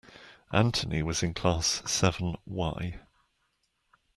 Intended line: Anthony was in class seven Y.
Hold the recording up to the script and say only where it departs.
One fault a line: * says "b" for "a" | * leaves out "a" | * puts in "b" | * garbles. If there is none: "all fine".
all fine